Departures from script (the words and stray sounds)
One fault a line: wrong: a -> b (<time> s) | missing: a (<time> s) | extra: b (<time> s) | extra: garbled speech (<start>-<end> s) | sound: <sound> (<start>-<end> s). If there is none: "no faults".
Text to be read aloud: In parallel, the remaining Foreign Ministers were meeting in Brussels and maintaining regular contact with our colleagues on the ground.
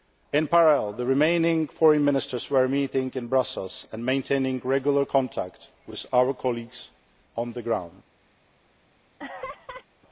sound: laugh (9.2-9.9 s)